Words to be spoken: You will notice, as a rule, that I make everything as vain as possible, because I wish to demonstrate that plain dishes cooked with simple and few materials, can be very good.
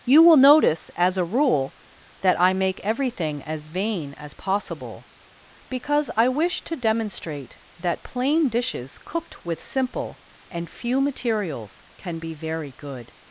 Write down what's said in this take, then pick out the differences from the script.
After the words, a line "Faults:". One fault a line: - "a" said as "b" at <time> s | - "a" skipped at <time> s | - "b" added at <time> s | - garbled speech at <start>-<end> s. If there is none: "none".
You will notice, as a rule, that I make everything as vain as possible, because I wish to demonstrate that plain dishes cooked with simple and few materials, can be very good.
Faults:
none